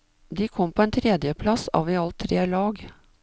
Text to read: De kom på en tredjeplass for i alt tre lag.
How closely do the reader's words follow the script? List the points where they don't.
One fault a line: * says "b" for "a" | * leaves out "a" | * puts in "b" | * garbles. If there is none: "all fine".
* says "av" for "for"